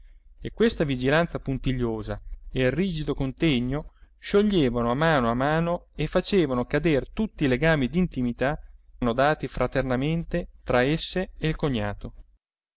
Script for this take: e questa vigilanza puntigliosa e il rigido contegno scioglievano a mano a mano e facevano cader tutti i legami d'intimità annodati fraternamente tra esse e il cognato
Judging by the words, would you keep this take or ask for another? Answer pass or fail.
pass